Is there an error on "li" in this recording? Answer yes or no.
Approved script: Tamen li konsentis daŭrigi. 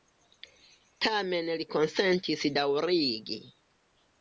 no